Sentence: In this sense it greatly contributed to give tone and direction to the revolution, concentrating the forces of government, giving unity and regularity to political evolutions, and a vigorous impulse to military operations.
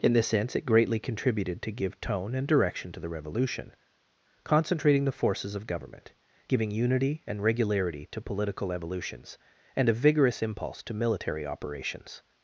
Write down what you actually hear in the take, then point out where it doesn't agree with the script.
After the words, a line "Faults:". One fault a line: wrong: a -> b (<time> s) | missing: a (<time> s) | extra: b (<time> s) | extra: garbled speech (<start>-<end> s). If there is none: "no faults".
In this sense it greatly contributed to give tone and direction to the revolution, concentrating the forces of government, giving unity and regularity to political evolutions, and a vigorous impulse to military operations.
Faults:
no faults